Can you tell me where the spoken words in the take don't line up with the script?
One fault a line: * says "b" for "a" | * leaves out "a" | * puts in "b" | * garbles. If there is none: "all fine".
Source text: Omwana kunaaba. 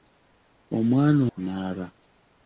all fine